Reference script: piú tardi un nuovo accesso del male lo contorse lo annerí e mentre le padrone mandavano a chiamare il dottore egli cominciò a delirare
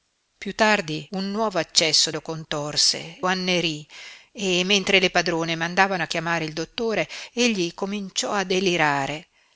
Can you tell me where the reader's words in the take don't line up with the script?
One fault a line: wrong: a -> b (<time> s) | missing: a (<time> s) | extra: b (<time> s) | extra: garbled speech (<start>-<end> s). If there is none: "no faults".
missing: del male (2.1 s)
missing: lo (3.2 s)